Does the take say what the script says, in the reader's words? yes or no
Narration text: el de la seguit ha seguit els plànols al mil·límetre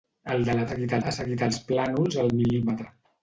yes